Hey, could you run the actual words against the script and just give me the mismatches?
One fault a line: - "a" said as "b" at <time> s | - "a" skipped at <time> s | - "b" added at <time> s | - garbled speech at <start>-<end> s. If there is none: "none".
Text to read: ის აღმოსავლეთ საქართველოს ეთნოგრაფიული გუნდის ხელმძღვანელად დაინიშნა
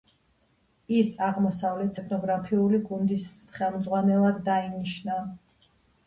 - "საქართველოს" skipped at 2.0 s